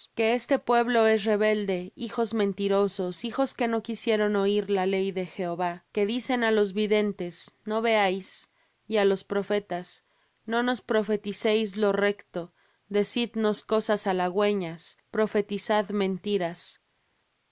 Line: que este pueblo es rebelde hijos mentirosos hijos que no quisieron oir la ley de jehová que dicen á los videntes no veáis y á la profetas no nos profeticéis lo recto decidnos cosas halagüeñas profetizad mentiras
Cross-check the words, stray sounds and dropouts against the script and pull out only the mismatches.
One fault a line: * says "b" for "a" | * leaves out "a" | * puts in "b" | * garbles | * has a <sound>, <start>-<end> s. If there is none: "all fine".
* says "los" for "la"